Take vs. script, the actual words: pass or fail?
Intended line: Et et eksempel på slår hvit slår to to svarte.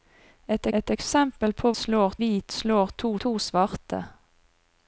pass